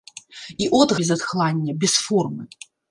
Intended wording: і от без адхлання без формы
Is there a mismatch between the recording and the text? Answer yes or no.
no